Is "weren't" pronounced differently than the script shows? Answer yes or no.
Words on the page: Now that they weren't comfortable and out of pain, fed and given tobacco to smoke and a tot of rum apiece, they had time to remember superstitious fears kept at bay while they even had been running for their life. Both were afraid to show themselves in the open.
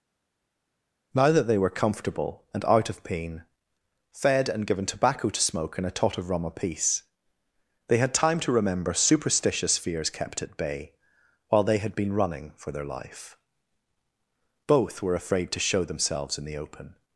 yes